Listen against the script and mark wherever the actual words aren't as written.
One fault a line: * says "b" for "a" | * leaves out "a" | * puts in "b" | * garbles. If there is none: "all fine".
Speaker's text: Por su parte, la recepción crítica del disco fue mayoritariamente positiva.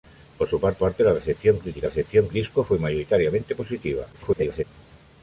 * puts in "parte"
* says "recepción" for "del"
* garbles